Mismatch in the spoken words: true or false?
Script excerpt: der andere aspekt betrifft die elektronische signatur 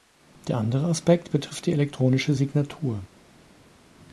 false